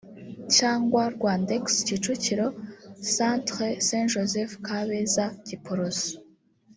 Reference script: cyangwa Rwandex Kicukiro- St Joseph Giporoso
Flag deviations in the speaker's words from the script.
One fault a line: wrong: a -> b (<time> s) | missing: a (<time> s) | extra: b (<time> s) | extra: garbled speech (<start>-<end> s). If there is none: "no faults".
extra: Centre (3.1 s)
extra: Kabeza (4.6 s)